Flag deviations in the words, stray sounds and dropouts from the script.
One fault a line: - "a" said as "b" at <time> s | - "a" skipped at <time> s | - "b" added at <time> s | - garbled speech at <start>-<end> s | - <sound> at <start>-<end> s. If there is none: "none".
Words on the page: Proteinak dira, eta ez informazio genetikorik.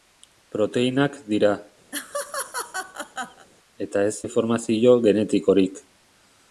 - laugh at 1.9-3.5 s